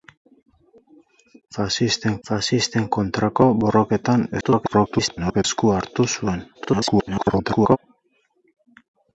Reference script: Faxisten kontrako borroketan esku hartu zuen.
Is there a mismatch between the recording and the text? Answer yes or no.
yes